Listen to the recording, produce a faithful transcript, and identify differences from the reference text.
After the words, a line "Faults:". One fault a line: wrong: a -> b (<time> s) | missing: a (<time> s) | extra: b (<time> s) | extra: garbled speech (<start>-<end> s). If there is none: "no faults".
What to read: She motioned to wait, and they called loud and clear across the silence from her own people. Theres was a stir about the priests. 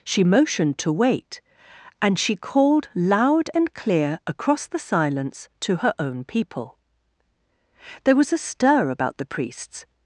She motioned to wait, and she called loud and clear across the silence to her own people. There was a stir about the priests.
Faults:
wrong: they -> she (2.2 s)
wrong: from -> to (5.6 s)
wrong: Theres -> There (8.0 s)